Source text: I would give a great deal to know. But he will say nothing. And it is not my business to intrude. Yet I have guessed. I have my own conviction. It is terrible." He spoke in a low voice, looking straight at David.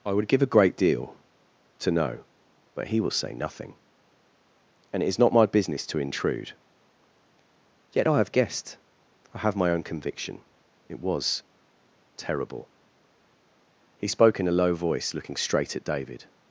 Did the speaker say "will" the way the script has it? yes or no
yes